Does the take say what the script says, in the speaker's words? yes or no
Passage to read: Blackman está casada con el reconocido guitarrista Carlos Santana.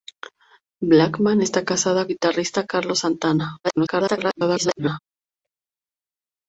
no